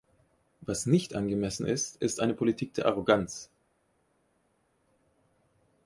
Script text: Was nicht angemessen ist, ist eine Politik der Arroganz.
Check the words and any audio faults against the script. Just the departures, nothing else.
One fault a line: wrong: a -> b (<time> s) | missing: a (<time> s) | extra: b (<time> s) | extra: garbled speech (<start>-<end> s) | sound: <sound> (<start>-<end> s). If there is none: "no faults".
no faults